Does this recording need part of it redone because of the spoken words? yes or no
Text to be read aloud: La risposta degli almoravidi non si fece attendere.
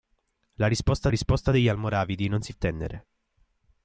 yes